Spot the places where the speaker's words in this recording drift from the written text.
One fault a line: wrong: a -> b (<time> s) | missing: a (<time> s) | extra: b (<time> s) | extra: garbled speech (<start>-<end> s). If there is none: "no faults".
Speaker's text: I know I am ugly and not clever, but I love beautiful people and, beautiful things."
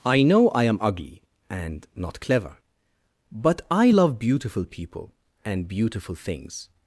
no faults